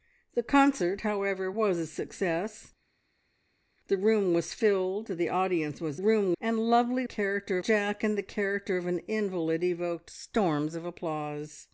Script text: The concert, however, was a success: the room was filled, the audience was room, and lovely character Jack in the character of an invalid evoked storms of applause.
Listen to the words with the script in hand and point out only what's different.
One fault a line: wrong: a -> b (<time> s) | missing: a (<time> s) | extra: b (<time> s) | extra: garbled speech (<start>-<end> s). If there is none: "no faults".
no faults